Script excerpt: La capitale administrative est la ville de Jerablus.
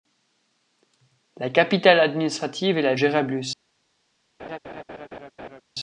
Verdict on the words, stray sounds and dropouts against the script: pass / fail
fail